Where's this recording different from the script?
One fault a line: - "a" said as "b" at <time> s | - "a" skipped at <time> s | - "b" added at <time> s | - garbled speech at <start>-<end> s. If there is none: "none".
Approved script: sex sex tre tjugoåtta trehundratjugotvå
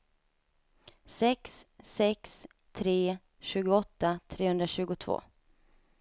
none